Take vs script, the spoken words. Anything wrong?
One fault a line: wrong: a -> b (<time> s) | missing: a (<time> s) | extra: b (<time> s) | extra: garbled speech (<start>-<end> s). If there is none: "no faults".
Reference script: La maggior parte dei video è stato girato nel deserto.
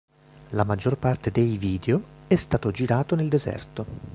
no faults